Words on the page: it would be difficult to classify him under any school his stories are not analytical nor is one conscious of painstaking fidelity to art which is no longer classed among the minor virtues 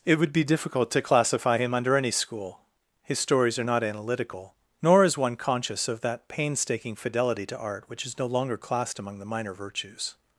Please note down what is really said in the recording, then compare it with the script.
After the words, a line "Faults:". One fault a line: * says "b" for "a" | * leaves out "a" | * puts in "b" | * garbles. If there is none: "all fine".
it would be difficult to classify him under any school his stories are not analytical nor is one conscious of that painstaking fidelity to art which is no longer classed among the minor virtues
Faults:
* puts in "that"